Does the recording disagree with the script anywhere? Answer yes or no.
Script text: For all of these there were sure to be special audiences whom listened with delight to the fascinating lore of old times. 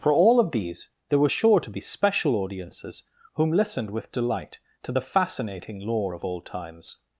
no